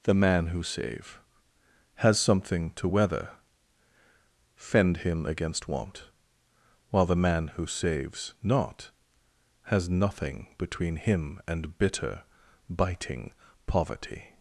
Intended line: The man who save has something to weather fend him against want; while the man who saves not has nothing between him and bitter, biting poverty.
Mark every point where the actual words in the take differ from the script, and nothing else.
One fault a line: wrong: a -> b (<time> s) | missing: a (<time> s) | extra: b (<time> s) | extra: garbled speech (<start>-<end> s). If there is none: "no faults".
no faults